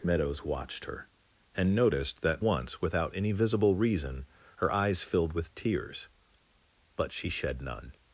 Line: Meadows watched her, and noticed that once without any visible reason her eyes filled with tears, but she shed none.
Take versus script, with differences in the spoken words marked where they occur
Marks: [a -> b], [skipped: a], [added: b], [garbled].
Meadows watched her, and noticed that once without any visible reason her eyes filled with tears, but she shed none.